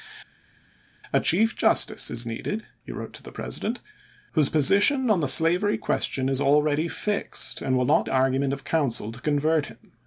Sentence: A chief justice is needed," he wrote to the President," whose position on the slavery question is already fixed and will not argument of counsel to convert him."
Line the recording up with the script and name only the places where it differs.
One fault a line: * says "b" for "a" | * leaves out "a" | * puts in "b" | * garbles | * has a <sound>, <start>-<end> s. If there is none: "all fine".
all fine